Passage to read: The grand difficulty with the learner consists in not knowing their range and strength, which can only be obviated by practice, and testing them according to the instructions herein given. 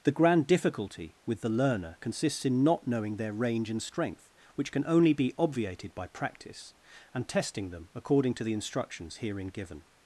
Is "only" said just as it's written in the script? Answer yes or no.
yes